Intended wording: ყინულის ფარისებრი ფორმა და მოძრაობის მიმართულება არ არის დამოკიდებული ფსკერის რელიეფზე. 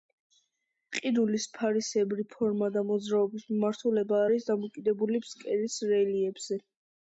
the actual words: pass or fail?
fail